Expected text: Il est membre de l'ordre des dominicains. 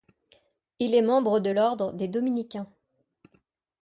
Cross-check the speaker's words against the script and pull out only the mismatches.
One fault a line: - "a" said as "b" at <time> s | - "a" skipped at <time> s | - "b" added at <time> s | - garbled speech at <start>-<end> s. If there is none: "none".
none